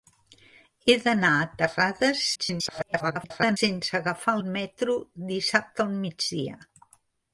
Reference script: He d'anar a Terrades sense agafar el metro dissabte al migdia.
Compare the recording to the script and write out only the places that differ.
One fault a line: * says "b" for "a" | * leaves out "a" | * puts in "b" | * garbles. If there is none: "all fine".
* garbles